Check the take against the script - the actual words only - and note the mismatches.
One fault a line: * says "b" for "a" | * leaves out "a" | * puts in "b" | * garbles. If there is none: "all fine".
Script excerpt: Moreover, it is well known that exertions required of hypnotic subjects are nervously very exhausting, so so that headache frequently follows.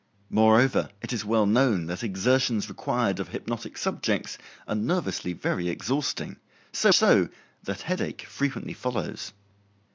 all fine